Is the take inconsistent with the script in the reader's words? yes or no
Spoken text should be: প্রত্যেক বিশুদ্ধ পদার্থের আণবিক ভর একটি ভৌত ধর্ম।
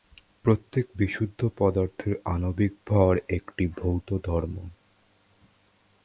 no